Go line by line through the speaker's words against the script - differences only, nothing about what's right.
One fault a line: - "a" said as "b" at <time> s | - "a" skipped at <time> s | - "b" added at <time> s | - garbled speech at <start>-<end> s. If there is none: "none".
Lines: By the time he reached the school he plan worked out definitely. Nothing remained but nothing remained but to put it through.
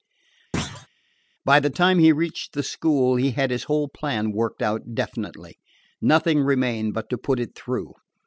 - "had his whole" added at 3.3 s
- "nothing remained but" skipped at 7.1 s